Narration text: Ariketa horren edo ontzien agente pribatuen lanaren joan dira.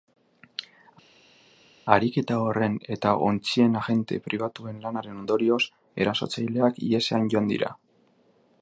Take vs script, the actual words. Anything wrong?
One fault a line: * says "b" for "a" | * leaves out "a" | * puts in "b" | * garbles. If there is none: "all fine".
* says "eta" for "edo"
* puts in "ondorioz erasotzaileak ihesean"